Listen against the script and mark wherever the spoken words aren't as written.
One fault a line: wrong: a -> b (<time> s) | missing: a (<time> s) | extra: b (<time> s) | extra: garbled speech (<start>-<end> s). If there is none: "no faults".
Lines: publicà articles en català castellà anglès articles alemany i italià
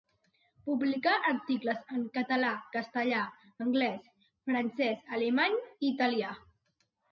wrong: articles -> francès (4.5 s)